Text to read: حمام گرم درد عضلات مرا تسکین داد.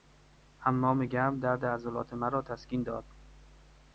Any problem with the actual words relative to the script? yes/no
no